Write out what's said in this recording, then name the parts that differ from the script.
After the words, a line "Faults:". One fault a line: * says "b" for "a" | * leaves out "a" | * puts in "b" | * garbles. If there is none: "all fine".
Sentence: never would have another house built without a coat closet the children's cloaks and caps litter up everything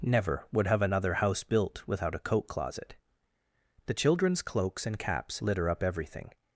never would have another house built without a coat closet the children's cloaks and caps litter up everything
Faults:
all fine